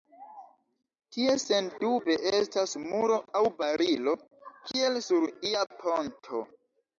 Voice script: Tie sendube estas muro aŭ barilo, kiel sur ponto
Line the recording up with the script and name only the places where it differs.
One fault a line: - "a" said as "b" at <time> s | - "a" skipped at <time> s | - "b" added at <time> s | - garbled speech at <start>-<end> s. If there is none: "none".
- "ia" added at 5.5 s